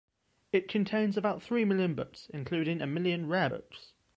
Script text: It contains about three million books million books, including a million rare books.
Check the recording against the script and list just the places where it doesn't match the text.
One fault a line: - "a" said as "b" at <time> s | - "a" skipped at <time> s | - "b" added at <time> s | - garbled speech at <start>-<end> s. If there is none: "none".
- "million books" skipped at 2.3 s